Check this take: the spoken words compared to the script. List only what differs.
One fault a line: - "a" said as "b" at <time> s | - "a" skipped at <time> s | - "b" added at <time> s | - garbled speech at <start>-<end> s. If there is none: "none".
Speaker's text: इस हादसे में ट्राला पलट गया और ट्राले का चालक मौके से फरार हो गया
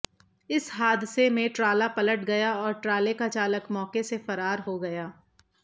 none